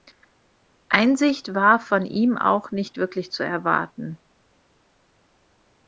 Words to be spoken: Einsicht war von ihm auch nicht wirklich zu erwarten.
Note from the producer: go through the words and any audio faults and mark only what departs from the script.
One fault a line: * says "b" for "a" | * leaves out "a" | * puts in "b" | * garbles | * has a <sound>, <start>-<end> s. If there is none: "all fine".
all fine